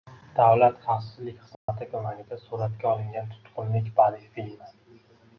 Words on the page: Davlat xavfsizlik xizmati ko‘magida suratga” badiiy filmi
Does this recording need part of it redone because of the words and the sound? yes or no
yes